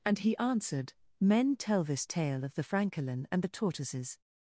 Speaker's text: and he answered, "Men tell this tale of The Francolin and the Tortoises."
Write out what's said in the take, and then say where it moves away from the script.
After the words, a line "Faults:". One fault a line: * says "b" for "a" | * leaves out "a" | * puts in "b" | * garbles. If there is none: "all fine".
and he answered, "Men tell this tale of The Francolin and the Tortoises."
Faults:
all fine